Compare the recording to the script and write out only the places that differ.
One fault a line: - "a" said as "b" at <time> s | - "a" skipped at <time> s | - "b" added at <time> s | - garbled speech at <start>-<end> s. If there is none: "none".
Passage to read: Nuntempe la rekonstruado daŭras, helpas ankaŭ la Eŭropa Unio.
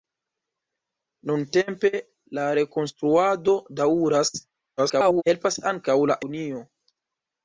- garbled speech at 4.8-5.2 s
- "Eŭropa" skipped at 6.2 s